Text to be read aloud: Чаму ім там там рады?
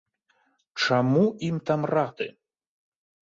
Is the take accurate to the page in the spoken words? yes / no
no